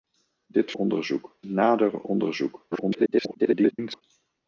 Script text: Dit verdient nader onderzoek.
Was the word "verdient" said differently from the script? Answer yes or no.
yes